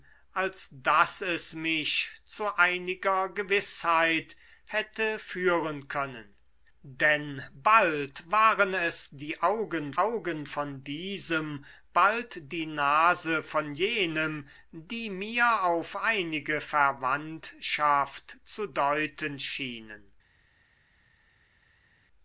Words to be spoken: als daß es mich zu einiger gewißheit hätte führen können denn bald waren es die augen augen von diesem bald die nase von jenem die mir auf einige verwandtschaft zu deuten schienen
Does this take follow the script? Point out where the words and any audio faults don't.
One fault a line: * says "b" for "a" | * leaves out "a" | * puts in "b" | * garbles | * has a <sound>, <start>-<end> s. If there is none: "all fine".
all fine